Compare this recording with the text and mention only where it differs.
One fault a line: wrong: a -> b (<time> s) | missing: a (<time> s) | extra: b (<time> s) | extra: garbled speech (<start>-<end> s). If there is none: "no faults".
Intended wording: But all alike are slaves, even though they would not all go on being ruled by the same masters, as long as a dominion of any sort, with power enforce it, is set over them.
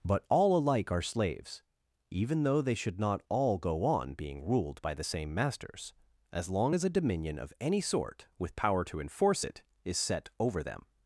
wrong: would -> should (2.8 s)
extra: to (8.9 s)